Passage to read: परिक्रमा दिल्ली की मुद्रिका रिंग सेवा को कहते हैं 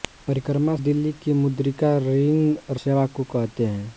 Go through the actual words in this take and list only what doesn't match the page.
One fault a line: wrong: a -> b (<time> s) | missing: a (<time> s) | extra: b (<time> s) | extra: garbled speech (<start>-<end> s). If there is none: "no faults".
no faults